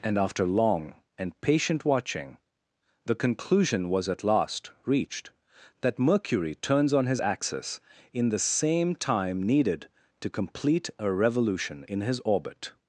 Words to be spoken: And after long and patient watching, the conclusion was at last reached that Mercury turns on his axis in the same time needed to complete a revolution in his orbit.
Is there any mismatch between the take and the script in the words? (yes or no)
no